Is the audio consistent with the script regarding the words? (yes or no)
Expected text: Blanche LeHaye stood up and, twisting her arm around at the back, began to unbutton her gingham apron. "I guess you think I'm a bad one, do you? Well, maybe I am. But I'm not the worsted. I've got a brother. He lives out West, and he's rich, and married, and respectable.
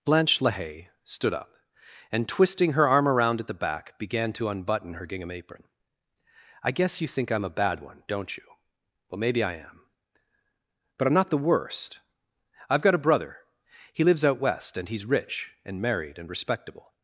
no